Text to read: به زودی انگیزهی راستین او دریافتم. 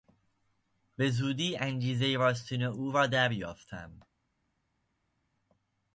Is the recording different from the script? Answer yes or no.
yes